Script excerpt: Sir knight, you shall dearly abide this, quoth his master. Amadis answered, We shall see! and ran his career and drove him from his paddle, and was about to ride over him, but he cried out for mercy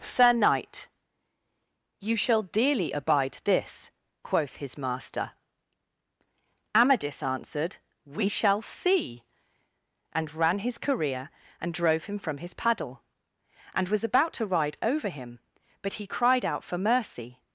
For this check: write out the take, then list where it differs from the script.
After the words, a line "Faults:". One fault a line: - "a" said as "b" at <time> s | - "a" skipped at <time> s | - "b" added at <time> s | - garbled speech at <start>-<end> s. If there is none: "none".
Sir knight, you shall dearly abide this, quoth his master. Amadis answered, We shall see! and ran his career and drove him from his paddle, and was about to ride over him, but he cried out for mercy
Faults:
none